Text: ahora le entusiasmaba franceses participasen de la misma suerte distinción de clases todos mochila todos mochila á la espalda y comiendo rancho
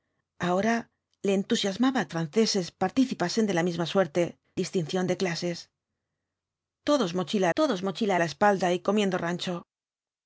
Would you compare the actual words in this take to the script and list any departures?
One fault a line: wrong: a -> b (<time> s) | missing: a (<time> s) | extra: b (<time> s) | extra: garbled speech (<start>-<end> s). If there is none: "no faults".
no faults